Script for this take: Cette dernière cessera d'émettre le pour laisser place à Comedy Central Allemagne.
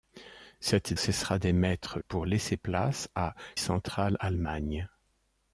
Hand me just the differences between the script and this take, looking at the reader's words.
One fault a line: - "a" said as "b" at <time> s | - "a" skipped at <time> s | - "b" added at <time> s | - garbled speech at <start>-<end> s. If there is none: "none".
- "dernière" skipped at 0.9 s
- "le" skipped at 2.0 s
- "Comedy" skipped at 3.3 s